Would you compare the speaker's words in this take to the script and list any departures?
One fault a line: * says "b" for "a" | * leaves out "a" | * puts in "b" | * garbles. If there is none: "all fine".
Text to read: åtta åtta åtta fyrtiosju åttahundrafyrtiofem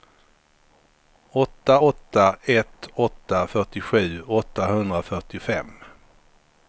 * puts in "ett"